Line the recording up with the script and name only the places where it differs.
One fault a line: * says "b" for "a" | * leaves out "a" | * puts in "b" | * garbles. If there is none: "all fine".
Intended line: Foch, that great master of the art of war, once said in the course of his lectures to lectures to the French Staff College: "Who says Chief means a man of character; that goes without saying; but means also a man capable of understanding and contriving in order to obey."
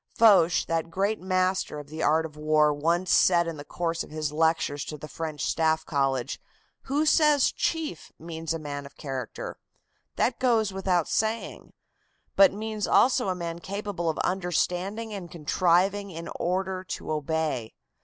* leaves out "lectures to"